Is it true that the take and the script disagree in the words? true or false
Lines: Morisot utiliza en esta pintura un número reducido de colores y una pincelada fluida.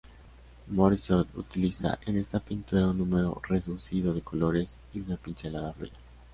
false